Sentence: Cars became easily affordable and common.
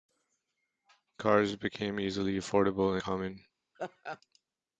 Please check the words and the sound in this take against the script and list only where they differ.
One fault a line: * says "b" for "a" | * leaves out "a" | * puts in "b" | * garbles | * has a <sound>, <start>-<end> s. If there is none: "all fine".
* leaves out "and"
* has a laugh, 3.7-4.2 s